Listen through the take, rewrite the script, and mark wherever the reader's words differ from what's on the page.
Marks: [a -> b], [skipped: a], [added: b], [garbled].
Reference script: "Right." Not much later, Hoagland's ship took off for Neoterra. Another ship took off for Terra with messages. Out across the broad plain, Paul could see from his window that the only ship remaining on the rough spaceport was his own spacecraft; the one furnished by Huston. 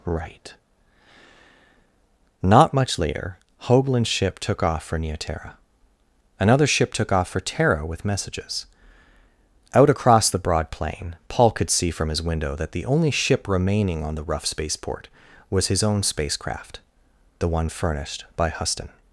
"Right." Not much later, Hoagland's ship took off for Neoterra. Another ship took off for Terra with messages. Out across the broad plain, Paul could see from his window that the only ship remaining on the rough spaceport was his own spacecraft; the one furnished by Huston.